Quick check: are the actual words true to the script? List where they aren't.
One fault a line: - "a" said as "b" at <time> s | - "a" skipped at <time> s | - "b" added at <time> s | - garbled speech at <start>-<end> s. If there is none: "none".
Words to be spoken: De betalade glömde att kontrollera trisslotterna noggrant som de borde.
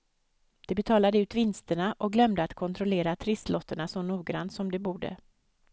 - "ut vinsterna och" added at 1.2 s
- "så" added at 3.9 s